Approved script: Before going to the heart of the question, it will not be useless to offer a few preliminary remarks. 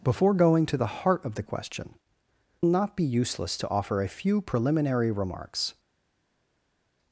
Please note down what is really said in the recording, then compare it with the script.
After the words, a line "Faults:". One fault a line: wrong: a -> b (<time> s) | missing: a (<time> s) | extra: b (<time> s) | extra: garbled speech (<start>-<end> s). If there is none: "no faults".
Before going to the heart of the question, not be useless to offer a few preliminary remarks.
Faults:
missing: it will (1.9 s)